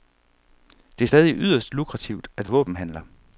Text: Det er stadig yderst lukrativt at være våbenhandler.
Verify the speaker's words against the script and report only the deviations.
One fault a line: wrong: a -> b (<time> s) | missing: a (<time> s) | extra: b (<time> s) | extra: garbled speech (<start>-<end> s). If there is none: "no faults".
missing: være (2.5 s)